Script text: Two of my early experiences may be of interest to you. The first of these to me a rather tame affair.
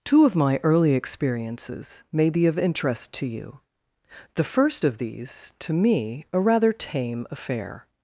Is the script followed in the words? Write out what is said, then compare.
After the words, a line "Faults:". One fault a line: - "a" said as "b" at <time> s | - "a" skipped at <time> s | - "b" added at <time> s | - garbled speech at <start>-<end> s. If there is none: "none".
Two of my early experiences may be of interest to you. The first of these to me a rather tame affair.
Faults:
none